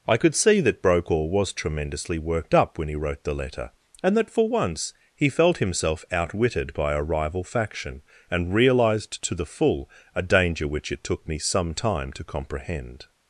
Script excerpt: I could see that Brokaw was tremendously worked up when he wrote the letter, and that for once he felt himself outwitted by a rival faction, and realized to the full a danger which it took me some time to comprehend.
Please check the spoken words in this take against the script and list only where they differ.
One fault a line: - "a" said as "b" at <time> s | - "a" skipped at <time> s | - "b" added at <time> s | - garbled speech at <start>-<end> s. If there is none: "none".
none